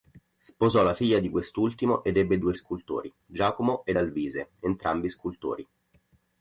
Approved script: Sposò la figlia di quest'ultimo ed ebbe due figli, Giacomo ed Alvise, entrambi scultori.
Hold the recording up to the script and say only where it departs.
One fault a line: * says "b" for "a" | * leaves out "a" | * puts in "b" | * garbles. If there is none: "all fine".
* says "scultori" for "figli"